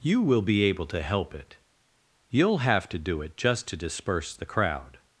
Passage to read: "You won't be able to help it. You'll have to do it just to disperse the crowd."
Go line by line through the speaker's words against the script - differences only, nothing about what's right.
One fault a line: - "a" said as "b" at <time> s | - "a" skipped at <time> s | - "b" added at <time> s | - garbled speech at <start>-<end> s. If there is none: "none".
- "won't" said as "will" at 0.2 s